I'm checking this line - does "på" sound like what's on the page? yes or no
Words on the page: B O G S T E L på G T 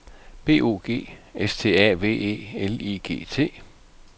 no